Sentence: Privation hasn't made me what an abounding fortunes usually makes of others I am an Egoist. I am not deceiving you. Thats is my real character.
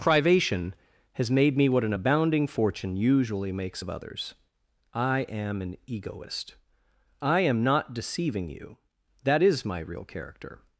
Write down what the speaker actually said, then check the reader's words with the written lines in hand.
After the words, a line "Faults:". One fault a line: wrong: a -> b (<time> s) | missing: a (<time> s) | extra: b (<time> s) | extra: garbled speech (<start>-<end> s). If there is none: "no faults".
Privation has made me what an abounding fortune usually makes of others I am an Egoist. I am not deceiving you. That is my real character.
Faults:
wrong: hasn't -> has (1.1 s)
wrong: fortunes -> fortune (2.5 s)
wrong: Thats -> That (9.2 s)